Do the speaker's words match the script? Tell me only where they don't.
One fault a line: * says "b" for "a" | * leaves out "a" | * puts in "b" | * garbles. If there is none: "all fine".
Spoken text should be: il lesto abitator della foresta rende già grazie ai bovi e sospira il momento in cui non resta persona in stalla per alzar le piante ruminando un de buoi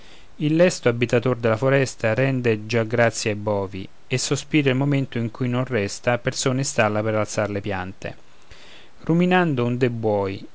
all fine